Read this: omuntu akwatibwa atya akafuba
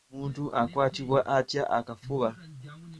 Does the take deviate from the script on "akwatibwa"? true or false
false